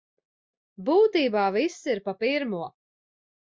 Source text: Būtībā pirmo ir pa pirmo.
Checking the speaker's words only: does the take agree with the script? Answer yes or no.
no